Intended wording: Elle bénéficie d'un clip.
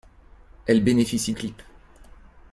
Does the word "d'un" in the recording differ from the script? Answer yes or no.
yes